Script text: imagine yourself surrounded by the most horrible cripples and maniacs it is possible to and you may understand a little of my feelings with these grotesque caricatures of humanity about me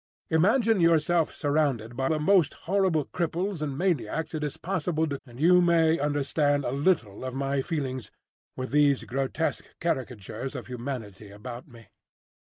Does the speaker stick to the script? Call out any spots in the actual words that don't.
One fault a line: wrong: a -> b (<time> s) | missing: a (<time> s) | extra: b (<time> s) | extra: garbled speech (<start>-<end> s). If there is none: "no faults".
no faults